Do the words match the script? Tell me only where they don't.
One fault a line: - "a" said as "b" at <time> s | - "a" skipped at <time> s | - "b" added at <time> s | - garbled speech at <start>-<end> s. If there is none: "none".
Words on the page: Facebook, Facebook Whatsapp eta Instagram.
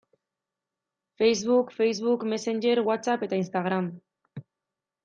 - "Messenger" added at 2.3 s